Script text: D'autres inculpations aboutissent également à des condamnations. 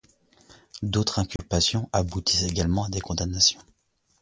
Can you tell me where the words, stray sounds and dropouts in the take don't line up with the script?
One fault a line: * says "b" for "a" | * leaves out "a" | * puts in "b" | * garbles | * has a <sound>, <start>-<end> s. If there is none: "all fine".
* has a dropout, 1.4-1.4 s